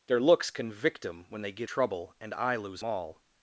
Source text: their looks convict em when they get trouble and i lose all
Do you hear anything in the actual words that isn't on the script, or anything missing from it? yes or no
no